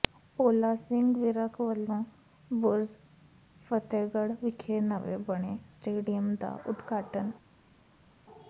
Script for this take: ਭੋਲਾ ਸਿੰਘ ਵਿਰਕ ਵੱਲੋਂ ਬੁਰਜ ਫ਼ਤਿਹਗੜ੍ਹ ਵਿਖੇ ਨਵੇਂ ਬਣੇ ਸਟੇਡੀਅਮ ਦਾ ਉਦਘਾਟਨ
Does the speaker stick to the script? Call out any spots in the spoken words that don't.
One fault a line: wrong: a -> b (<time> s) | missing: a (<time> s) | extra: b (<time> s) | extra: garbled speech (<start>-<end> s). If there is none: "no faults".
no faults